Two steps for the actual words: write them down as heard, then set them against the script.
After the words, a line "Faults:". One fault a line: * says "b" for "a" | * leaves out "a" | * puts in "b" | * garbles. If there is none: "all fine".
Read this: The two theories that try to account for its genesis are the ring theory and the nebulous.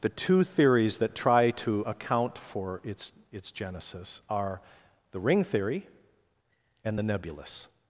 The two theories that try to account for its its genesis are the ring theory and the nebulous.
Faults:
* puts in "its"